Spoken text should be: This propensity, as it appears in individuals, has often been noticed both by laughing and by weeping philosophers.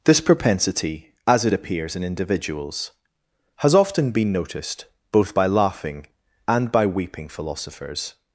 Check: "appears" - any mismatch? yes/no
no